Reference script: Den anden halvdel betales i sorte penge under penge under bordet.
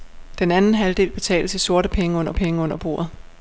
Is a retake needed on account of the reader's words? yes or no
no